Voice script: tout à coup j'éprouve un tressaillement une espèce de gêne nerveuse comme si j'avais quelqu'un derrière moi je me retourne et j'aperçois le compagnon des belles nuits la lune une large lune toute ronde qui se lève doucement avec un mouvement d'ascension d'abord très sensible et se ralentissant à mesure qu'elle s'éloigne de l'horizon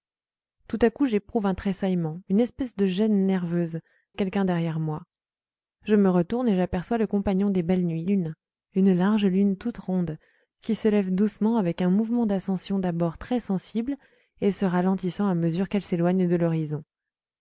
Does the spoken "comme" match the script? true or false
false